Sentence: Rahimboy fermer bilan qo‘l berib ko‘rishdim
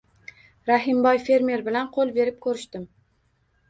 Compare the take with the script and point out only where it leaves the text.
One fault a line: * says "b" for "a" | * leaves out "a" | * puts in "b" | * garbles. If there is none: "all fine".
all fine